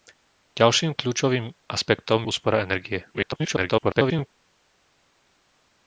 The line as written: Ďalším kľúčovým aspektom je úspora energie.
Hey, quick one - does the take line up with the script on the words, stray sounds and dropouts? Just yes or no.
no